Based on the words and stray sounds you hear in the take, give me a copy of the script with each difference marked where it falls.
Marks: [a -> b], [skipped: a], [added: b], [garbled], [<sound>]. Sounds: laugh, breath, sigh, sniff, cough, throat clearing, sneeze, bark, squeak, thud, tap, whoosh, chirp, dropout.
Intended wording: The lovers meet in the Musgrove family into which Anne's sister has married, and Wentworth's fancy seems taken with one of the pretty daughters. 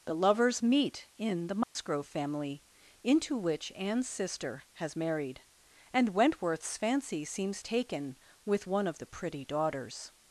The lovers meet in the Musgrove [dropout] family into which Anne's sister has married, and Wentworth's fancy seems taken with one of the pretty daughters.